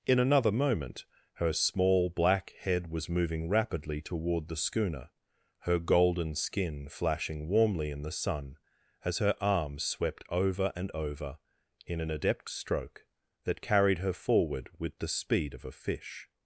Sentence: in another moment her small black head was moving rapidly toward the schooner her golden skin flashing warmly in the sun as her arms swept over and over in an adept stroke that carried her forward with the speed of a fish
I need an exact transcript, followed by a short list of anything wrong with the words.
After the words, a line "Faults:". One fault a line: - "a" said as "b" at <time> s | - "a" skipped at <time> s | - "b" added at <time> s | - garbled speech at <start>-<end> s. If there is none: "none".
in another moment her small black head was moving rapidly toward the schooner her golden skin flashing warmly in the sun as her arms swept over and over in an adept stroke that carried her forward with the speed of a fish
Faults:
none